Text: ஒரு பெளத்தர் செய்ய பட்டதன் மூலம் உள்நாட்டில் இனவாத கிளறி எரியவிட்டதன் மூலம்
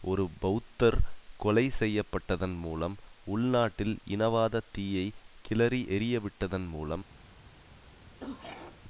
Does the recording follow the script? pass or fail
fail